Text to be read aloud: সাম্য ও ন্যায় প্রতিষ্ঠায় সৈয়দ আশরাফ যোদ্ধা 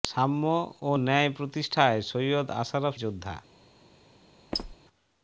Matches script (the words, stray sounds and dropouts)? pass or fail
fail